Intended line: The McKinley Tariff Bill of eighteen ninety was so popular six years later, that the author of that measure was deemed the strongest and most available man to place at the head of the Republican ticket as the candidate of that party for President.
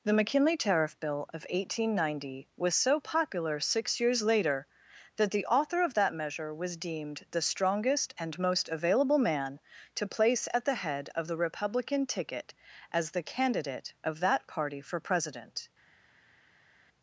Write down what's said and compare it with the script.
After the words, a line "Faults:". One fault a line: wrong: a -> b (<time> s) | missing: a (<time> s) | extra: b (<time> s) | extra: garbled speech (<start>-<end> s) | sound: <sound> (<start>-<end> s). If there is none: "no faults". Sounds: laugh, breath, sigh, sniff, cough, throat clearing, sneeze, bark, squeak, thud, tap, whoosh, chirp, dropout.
The McKinley Tariff Bill of eighteen ninety was so popular six years later, that the author of that measure was deemed the strongest and most available man to place at the head of the Republican ticket as the candidate of that party for President.
Faults:
no faults